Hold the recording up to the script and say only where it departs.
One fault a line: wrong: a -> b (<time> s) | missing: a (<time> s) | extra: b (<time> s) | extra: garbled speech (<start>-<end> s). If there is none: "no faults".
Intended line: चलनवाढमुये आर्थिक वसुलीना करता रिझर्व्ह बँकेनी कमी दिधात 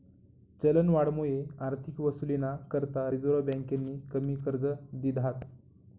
extra: कर्ज (4.4 s)